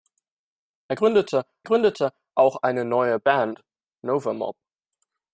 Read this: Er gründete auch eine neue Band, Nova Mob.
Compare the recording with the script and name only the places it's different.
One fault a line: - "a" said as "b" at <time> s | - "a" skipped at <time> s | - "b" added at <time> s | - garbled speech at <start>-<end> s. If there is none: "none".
- "gründete" added at 1.6 s